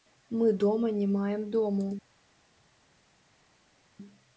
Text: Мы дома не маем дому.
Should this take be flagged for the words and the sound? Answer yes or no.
no